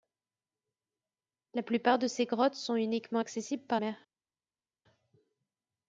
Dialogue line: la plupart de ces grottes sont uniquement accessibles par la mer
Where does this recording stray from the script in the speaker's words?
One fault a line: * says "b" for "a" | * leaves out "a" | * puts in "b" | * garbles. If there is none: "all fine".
* leaves out "la"